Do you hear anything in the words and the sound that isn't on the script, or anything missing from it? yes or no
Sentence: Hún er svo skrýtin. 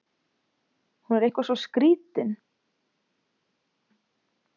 yes